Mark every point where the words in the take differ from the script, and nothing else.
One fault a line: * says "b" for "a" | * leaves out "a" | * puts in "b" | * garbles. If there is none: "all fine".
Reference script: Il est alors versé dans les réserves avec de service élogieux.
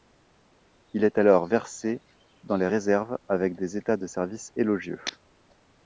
* puts in "des états"